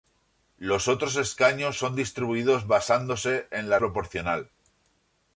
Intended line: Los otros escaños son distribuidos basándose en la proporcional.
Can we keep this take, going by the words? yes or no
yes